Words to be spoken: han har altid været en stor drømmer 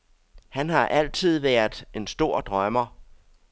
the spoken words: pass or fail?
pass